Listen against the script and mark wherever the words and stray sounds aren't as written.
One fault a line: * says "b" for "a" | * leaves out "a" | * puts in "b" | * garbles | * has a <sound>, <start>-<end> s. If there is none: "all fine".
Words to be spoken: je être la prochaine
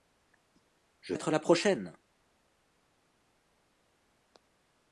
all fine